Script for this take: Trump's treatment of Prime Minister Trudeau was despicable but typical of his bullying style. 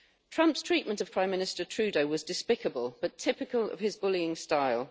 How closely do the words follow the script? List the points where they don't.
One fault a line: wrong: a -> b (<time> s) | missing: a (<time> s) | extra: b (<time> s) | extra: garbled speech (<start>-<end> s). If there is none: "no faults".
no faults